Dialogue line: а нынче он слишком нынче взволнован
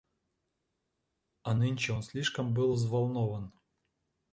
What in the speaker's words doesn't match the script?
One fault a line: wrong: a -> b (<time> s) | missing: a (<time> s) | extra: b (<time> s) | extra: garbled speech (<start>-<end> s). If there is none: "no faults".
wrong: нынче -> был (2.5 s)